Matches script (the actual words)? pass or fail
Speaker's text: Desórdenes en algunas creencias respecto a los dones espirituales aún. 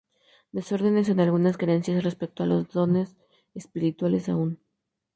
pass